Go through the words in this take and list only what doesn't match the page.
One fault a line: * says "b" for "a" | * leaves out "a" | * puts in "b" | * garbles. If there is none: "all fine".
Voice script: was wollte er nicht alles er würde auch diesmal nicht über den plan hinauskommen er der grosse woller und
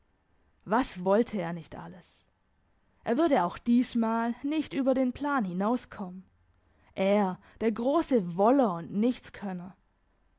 all fine